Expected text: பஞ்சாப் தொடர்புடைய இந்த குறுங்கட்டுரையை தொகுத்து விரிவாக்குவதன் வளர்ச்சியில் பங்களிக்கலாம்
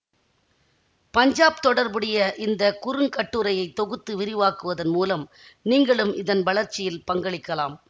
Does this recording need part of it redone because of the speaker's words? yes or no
yes